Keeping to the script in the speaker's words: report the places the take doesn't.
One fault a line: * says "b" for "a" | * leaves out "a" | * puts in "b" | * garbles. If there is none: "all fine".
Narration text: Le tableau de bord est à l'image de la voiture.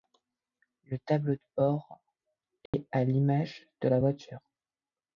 all fine